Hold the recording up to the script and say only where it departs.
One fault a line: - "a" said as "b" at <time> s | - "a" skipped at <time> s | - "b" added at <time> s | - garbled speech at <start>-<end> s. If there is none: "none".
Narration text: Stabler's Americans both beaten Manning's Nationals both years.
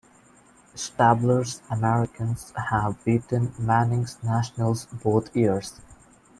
- "both" said as "have" at 2.7 s